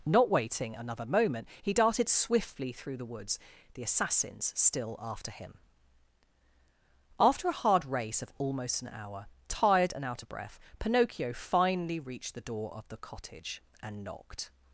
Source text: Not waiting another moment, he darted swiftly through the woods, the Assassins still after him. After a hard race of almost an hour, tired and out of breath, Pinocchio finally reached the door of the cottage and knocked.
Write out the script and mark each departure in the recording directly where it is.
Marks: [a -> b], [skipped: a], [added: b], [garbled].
Not waiting another moment, he darted swiftly through the woods, the Assassins still after him. After a hard race of almost an hour, tired and out of breath, Pinocchio finally reached the door of the cottage and knocked.